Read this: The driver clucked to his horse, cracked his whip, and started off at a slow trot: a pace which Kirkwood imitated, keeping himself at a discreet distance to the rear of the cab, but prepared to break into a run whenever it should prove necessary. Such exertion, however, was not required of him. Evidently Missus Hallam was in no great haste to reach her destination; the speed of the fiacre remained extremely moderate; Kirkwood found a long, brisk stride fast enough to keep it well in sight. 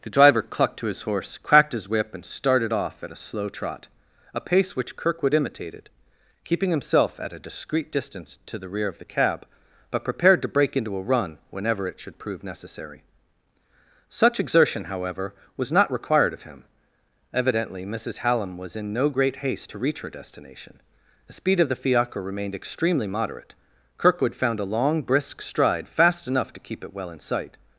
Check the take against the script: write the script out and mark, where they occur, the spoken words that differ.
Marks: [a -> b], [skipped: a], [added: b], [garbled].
The driver clucked to his horse, cracked his whip, and started off at a slow trot: a pace which Kirkwood imitated, keeping himself at a discreet distance to the rear of the cab, but prepared to break into a run whenever it should prove necessary. Such exertion, however, was not required of him. Evidently Missus Hallam was in no great haste to reach her destination; the speed of the fiacre remained extremely moderate; Kirkwood found a long, brisk stride fast enough to keep it well in sight.